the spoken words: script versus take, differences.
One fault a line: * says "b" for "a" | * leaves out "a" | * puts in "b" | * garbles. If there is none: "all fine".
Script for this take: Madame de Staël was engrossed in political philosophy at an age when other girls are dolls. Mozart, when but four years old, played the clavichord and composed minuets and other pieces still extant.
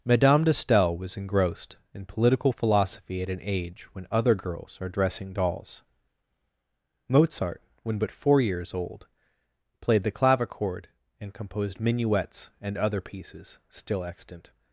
* puts in "dressing"